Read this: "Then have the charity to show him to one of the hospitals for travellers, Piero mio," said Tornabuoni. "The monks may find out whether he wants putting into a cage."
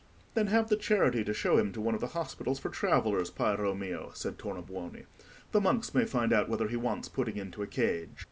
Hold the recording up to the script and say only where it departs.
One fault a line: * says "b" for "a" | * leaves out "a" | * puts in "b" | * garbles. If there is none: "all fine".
all fine